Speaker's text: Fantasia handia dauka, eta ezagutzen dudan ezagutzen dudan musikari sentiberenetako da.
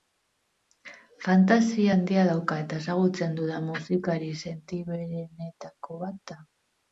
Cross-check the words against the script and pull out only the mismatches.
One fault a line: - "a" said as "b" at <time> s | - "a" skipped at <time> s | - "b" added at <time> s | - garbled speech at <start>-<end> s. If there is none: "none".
- "ezagutzen dudan" skipped at 3.7 s
- "bat" added at 6.1 s